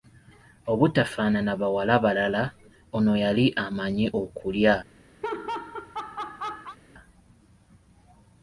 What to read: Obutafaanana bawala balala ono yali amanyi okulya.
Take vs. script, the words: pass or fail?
pass